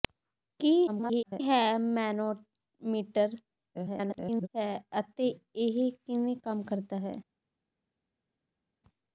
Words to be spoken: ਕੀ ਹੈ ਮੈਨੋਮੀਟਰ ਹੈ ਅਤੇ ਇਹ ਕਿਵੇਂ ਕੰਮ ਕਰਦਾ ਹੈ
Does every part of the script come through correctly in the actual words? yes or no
no